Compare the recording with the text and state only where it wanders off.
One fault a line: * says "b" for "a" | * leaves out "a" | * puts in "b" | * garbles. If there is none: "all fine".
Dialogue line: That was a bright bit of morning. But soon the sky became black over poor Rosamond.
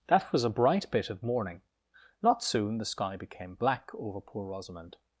* says "Not" for "But"